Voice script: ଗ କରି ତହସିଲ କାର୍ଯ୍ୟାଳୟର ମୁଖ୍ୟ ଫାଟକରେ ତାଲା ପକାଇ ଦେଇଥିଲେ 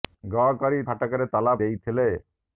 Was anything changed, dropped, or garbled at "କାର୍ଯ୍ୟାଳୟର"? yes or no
yes